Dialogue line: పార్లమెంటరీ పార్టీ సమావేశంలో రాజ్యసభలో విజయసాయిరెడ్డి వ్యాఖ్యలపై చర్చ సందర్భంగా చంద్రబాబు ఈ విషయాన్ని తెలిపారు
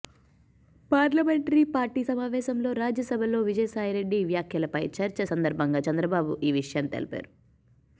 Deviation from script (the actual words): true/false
false